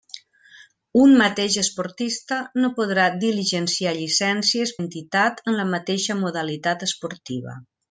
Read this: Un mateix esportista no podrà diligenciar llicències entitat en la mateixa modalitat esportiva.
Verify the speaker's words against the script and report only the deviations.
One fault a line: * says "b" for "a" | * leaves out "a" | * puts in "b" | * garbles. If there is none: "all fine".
all fine